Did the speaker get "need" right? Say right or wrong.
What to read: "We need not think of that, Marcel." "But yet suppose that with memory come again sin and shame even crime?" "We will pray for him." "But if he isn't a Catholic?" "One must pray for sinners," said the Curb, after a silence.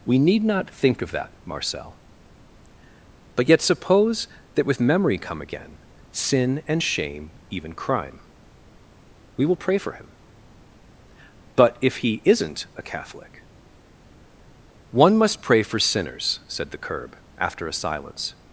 right